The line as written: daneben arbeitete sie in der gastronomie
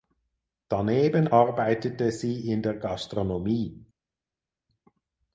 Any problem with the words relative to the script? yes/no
no